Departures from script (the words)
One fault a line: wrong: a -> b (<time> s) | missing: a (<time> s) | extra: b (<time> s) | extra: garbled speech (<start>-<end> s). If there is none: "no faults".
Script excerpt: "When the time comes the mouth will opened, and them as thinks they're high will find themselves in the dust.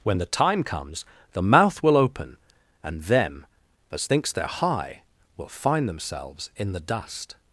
wrong: opened -> open (1.9 s)